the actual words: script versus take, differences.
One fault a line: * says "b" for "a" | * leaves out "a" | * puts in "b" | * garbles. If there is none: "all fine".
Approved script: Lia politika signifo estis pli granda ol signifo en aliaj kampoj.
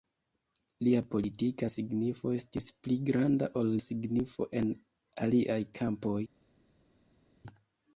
all fine